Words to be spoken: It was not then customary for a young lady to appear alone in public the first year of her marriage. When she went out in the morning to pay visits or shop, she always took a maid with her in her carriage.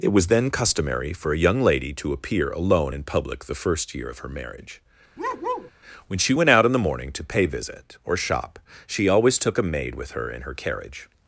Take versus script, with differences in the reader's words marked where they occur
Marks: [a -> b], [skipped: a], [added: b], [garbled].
It was [skipped: not] then customary for a young lady to appear alone in public the first year of her marriage. When she went out in the morning to pay [visits -> visit] or shop, she always took a maid with her in her carriage.